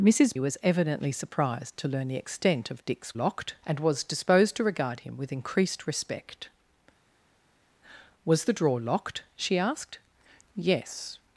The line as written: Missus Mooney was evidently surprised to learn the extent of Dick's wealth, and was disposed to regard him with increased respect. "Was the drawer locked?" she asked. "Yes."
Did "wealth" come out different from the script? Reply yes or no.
yes